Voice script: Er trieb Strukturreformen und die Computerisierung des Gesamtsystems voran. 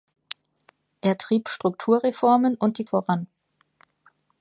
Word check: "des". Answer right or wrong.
wrong